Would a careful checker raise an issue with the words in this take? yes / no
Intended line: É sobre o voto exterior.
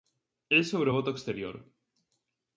no